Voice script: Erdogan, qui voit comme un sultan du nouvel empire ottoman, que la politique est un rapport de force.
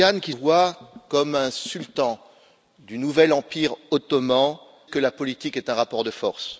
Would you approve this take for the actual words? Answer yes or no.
yes